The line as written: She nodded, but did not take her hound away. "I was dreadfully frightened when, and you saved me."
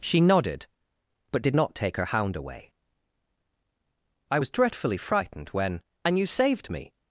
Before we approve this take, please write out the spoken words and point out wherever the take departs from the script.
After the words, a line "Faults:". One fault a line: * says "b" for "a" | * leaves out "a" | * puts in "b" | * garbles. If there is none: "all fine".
She nodded, but did not take her hound away. "I was dreadfully frightened when, and you saved me."
Faults:
all fine